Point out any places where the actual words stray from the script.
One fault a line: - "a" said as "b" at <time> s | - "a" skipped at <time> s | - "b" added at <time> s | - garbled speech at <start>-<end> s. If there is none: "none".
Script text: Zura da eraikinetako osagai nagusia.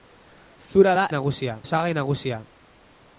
- "eraikinetako" said as "nagusia" at 1.2 s